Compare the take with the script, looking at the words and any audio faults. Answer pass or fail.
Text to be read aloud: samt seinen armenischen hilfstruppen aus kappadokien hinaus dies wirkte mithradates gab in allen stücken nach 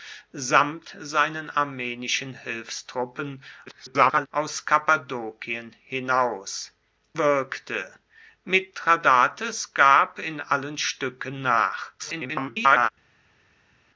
fail